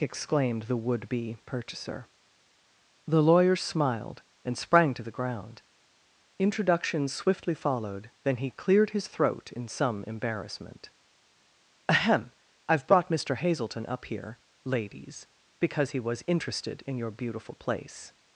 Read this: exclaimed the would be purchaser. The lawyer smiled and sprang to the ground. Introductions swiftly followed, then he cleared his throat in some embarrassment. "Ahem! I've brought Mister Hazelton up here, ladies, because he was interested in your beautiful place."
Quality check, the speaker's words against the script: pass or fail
pass